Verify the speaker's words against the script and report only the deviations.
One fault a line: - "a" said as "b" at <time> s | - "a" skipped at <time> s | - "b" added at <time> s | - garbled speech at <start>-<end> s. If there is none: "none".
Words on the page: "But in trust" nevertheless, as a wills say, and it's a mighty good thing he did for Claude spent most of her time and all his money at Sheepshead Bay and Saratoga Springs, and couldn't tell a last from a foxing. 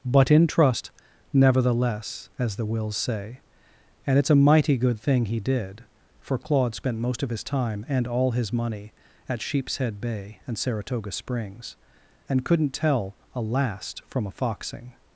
- "a" said as "the" at 2.5 s
- "her" said as "his" at 7.3 s